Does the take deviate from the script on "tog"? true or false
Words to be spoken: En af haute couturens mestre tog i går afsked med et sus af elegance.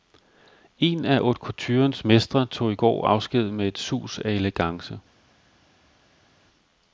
false